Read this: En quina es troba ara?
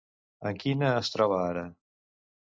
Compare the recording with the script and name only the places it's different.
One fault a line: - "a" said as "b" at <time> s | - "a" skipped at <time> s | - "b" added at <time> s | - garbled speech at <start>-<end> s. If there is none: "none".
none